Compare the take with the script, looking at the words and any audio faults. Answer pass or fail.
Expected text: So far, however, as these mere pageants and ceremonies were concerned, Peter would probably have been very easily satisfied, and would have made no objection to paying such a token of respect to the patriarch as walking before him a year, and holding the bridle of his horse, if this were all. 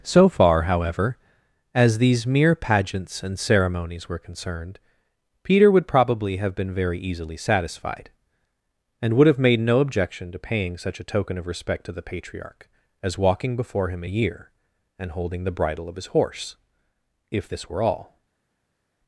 pass